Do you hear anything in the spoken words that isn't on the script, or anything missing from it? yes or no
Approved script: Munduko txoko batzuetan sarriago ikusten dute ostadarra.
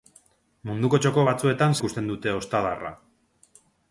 yes